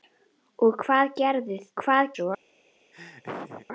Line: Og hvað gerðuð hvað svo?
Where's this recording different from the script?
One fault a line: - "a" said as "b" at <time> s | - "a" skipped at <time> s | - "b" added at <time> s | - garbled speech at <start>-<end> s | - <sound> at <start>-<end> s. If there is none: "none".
- laugh at 2.9-3.7 s